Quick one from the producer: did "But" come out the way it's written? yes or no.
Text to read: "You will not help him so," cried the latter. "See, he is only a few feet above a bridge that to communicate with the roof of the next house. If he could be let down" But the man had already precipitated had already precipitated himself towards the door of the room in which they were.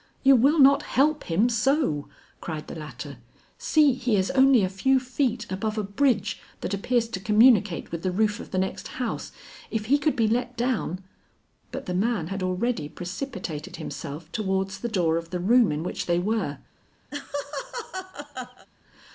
yes